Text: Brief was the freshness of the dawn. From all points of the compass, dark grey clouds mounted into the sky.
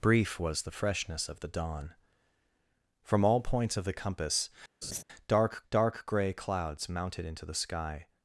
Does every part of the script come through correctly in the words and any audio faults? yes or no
no